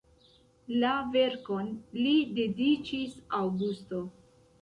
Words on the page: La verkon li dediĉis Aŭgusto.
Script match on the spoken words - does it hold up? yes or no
yes